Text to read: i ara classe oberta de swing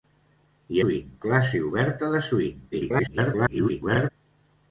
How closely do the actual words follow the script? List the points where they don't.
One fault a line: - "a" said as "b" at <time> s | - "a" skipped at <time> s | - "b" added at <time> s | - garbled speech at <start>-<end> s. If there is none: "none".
- "ara" said as "swing" at 0.8 s
- garbled speech at 2.7-4.1 s